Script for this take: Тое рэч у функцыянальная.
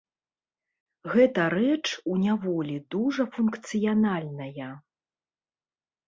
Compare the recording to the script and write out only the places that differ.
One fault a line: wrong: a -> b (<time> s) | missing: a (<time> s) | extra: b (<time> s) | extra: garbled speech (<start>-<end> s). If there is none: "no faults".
wrong: Тое -> Гэта (1.1 s)
extra: няволі дужа (2.2 s)